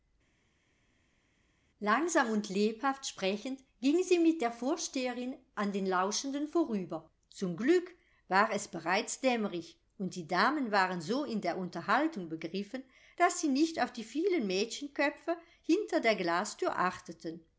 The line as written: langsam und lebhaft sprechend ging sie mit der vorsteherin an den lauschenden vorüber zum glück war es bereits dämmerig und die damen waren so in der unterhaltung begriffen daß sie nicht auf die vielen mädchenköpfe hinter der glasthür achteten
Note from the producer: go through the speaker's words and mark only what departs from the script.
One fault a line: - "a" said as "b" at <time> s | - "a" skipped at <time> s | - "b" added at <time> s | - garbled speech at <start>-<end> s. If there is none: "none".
none